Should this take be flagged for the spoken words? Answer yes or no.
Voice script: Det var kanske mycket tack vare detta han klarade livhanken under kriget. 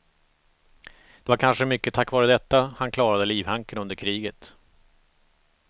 no